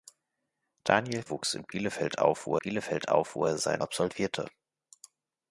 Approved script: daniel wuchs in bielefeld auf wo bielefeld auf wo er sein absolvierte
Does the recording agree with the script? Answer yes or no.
yes